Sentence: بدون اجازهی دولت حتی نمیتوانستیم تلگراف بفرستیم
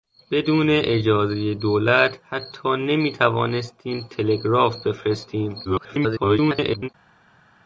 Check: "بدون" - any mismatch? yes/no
no